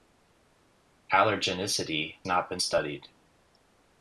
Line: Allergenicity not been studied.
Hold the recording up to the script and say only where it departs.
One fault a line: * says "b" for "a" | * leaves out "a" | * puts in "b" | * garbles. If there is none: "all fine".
all fine